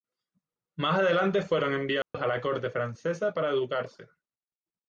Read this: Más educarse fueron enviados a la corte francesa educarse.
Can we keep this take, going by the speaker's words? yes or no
no